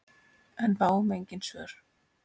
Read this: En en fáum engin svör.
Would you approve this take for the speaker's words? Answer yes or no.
no